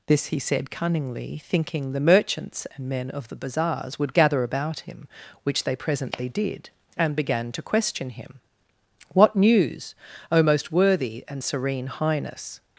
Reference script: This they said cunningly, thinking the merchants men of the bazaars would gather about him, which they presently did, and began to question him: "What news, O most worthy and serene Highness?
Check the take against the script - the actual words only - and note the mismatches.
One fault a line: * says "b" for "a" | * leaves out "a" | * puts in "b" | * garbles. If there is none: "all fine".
* says "he" for "they"
* puts in "and"